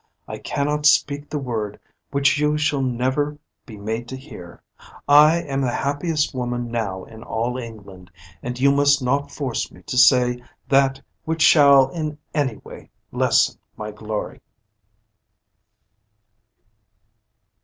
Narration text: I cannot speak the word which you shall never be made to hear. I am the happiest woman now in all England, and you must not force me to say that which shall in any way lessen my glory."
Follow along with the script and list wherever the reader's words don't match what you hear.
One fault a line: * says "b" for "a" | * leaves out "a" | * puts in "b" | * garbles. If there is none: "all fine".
all fine